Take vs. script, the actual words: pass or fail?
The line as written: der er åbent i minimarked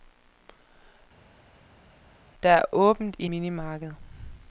pass